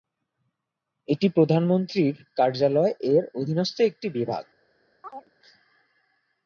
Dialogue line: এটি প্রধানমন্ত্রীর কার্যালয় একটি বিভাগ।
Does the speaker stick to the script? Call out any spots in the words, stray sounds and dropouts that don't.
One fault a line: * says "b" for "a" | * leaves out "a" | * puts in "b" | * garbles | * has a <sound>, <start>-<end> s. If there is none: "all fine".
* puts in "এর অধীনস্থ"
* has a chirp, 5.0-5.3 s